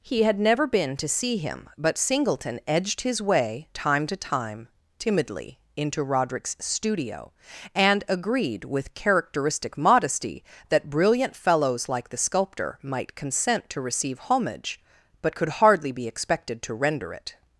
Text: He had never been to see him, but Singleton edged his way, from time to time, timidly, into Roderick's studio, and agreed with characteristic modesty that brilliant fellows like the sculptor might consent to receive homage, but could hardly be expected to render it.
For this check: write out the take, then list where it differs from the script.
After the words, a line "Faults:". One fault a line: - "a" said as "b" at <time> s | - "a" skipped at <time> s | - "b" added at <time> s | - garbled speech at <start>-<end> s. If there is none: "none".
He had never been to see him, but Singleton edged his way, time to time, timidly, into Roderick's studio, and agreed with characteristic modesty that brilliant fellows like the sculptor might consent to receive homage, but could hardly be expected to render it.
Faults:
- "from" skipped at 3.7 s